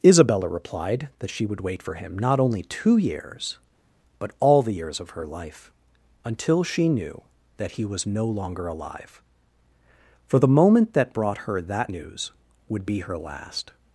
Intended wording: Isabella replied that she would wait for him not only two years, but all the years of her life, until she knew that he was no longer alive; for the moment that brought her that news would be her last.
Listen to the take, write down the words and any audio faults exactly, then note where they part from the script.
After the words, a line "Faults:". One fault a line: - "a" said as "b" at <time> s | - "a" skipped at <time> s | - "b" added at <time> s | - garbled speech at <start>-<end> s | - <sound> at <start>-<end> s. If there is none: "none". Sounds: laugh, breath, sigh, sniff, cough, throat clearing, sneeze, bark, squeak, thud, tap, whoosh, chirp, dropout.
Isabella replied that she would wait for him not only two years, but all the years of her life, until she knew that he was no longer alive; for the moment that brought her that news would be her last.
Faults:
none